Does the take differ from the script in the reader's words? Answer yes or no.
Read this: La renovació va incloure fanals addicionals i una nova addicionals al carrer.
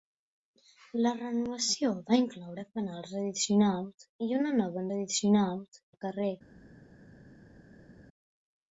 no